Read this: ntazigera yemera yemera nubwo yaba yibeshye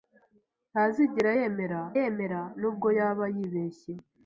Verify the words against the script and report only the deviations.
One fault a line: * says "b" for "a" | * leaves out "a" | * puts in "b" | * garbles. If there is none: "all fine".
all fine